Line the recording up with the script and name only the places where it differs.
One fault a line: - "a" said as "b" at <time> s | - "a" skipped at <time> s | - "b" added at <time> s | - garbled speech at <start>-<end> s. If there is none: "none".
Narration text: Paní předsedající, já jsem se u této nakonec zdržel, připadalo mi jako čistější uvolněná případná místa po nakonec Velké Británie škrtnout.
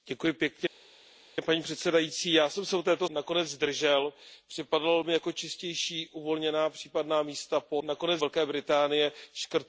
none